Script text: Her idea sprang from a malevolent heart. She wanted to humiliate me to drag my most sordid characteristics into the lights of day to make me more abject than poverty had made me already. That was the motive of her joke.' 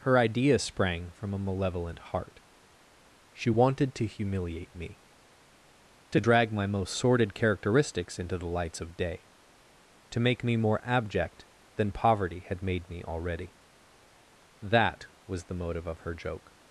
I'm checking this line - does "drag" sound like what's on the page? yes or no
yes